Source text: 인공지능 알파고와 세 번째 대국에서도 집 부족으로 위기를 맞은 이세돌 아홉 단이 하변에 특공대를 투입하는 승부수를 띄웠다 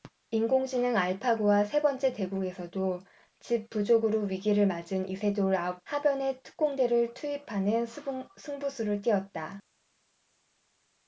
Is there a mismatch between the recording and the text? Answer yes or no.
yes